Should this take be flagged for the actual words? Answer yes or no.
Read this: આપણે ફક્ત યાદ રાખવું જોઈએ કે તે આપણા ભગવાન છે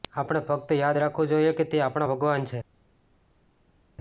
no